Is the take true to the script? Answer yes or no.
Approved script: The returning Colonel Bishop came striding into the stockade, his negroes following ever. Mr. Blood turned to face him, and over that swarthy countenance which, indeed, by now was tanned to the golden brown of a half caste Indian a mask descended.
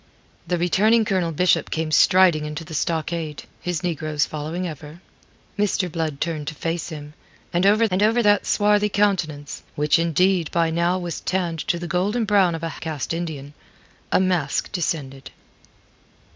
no